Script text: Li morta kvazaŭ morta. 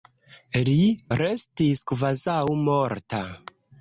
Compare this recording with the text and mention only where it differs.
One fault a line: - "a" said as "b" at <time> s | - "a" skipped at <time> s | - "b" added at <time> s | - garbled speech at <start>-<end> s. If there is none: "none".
- "morta" said as "restis" at 1.2 s